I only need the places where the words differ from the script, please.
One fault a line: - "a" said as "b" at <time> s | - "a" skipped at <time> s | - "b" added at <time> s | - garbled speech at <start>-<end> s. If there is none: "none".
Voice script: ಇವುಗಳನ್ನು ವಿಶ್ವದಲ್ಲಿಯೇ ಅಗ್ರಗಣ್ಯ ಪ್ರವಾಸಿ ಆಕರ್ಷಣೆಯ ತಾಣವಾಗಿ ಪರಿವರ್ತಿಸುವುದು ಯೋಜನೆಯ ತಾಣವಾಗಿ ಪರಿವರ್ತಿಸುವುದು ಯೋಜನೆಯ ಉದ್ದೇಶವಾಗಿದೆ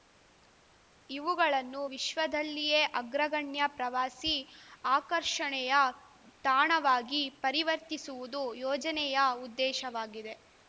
- "ತಾಣವಾಗಿ ಪರಿವರ್ತಿಸುವುದು ಯೋಜನೆಯ" skipped at 9.2 s